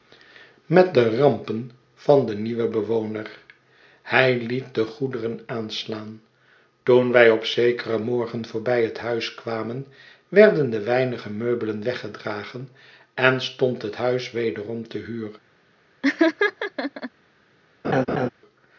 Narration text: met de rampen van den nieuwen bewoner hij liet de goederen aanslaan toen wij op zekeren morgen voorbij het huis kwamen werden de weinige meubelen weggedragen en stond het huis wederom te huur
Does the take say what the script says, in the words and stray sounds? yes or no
no